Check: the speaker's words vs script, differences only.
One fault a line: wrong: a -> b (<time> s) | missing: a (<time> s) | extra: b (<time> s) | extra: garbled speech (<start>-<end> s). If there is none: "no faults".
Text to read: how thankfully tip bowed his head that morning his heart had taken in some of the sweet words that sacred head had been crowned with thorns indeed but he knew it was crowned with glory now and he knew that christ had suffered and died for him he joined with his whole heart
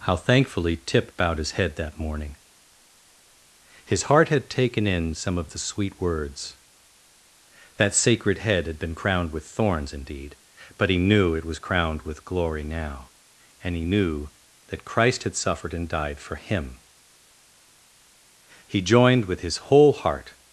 no faults